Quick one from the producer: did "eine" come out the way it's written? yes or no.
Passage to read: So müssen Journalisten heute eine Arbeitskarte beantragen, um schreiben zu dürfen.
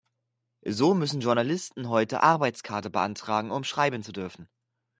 no